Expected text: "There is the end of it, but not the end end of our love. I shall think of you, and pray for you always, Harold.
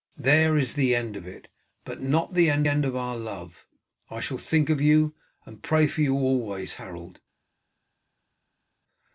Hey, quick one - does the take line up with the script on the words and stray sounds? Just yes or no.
yes